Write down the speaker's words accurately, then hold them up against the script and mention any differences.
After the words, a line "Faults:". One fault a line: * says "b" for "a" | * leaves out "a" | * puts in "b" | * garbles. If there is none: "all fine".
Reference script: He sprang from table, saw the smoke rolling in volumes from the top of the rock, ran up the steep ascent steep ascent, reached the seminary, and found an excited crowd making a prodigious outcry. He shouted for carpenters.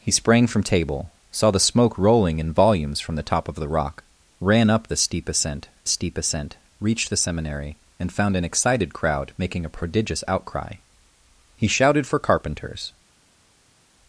He sprang from table, saw the smoke rolling in volumes from the top of the rock, ran up the steep ascent steep ascent, reached the seminary, and found an excited crowd making a prodigious outcry. He shouted for carpenters.
Faults:
all fine